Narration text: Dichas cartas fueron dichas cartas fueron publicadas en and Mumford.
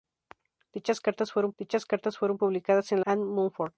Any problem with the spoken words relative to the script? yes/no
no